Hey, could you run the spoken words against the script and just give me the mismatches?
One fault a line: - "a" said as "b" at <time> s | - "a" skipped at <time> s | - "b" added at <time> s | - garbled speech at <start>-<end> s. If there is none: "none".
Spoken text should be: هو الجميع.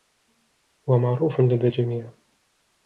- "معروف لدى" added at 1.0 s